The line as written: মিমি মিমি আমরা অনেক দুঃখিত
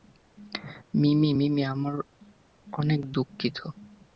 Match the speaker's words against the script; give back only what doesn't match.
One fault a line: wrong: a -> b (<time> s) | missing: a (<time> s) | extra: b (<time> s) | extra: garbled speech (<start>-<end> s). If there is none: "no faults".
no faults